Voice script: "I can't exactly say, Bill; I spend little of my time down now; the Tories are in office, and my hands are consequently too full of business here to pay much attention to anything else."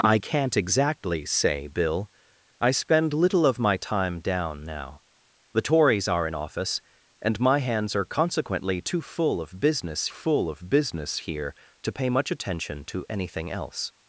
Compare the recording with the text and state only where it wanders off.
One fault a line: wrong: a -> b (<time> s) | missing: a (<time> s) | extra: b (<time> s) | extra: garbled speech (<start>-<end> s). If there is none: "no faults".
extra: full of business (10.1 s)